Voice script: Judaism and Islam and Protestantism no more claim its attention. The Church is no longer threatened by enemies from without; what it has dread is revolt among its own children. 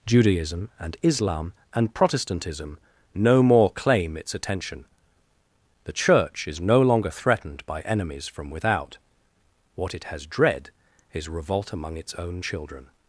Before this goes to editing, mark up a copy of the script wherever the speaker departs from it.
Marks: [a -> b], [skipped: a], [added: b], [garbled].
Judaism and Islam and Protestantism no more claim its attention. The Church is no longer threatened by enemies from without; what it has dread is revolt among its own children.